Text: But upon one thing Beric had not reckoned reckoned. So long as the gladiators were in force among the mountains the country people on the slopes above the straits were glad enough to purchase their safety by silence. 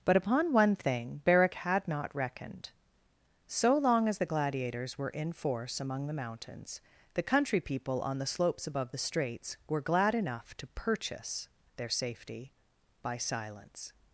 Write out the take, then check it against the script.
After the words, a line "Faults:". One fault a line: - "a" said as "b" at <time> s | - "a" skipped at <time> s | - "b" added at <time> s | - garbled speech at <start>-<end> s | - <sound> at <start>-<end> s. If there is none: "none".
But upon one thing Beric had not reckoned. So long as the gladiators were in force among the mountains the country people on the slopes above the straits were glad enough to purchase their safety by silence.
Faults:
- "reckoned" skipped at 2.7 s